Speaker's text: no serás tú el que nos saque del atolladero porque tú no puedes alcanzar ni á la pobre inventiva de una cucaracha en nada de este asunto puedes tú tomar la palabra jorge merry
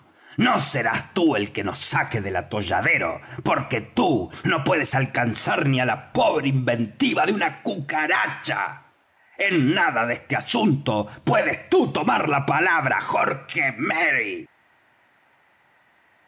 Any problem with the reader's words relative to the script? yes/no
no